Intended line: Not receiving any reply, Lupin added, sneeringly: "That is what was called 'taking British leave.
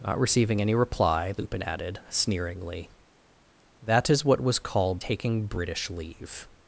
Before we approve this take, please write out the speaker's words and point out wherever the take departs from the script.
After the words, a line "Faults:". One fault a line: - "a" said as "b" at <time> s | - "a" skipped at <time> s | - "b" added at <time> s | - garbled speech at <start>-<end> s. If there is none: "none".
Not receiving any reply, Lupin added, sneeringly: "That is what was called 'taking British leave.
Faults:
none